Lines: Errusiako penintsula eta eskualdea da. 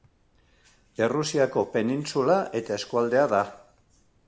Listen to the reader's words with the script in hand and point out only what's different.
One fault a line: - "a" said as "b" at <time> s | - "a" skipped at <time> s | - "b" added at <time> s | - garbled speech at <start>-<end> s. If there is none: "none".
none